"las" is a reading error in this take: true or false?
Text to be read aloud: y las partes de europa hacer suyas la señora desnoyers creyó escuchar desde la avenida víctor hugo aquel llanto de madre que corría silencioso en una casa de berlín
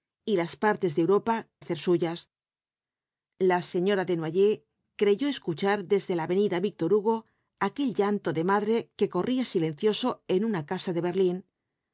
false